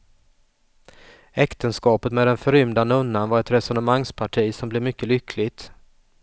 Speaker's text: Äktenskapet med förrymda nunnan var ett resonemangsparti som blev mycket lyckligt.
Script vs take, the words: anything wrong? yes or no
yes